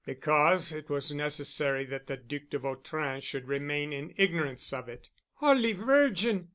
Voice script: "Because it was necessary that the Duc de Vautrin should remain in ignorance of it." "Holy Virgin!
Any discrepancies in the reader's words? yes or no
no